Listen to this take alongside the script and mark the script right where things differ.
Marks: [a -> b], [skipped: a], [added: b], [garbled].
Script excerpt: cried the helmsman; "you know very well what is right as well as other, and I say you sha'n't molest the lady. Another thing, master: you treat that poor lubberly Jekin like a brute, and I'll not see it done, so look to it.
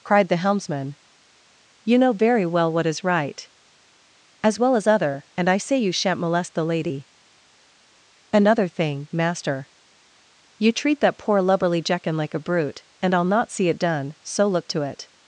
cried the helmsman; "you know very well what is right as well as other, and I say you sha'n't molest the lady. Another thing, master: you treat that poor lubberly Jekin like a brute, and I'll not see it done, so look to it.